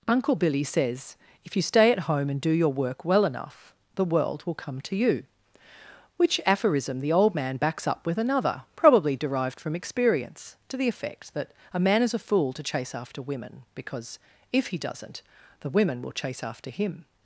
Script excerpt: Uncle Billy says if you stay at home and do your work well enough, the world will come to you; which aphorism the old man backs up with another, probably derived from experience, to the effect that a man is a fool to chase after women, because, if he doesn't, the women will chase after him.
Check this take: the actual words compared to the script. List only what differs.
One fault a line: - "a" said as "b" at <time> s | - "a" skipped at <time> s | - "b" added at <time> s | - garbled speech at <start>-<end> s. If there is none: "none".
none